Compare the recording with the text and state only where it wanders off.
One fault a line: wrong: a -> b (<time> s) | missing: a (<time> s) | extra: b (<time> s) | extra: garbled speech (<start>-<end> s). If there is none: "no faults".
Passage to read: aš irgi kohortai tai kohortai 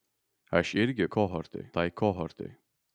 no faults